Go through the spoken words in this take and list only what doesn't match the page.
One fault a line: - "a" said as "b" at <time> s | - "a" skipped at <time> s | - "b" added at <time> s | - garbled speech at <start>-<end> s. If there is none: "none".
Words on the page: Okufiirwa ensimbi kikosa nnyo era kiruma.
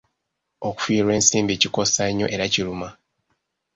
none